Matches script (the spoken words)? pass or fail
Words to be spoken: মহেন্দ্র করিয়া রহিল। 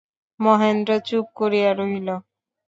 fail